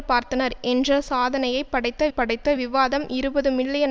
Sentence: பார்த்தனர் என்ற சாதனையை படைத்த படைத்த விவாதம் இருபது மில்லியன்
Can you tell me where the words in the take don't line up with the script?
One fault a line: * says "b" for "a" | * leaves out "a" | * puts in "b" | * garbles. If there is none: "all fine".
all fine